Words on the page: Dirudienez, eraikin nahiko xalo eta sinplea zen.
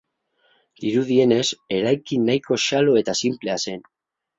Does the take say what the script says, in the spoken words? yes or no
yes